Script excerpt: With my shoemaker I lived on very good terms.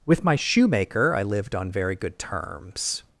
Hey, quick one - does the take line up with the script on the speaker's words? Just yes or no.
yes